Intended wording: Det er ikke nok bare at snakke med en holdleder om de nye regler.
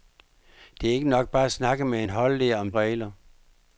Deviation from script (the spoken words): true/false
true